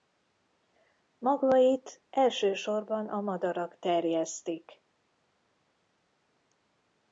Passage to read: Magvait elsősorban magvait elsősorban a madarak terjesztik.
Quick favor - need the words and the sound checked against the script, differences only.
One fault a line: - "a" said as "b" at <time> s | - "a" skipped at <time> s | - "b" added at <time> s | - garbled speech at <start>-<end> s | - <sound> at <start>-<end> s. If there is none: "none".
- "magvait elsősorban" skipped at 3.1 s